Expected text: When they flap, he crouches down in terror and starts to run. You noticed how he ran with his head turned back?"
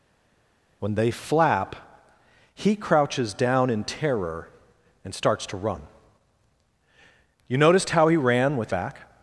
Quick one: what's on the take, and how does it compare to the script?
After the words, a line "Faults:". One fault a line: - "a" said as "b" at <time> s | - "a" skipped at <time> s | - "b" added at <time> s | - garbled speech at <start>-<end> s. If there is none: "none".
When they flap, he crouches down in terror and starts to run. You noticed how he ran with back?"
Faults:
- "his head turned" skipped at 8.7 s